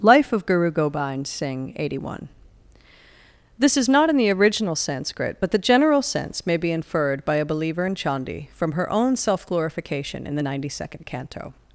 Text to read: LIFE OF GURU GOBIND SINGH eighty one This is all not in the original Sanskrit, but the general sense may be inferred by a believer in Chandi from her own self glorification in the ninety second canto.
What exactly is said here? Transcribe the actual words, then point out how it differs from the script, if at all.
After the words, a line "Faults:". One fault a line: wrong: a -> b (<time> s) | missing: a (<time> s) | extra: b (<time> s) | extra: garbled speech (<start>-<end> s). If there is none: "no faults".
LIFE OF GURU GOBIND SINGH eighty one This is not in the original Sanskrit, but the general sense may be inferred by a believer in Chandi from her own self glorification in the ninety second canto.
Faults:
missing: all (3.9 s)